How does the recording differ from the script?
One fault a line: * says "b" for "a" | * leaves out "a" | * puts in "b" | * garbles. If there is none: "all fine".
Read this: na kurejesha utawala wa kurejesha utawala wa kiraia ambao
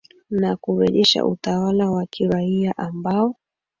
* leaves out "kurejesha utawala wa"